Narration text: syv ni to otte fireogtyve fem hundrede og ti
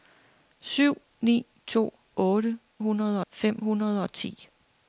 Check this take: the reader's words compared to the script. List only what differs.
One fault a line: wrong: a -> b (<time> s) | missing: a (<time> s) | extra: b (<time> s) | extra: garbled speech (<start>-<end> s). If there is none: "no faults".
wrong: fireogtyve -> hundrede (2.8 s)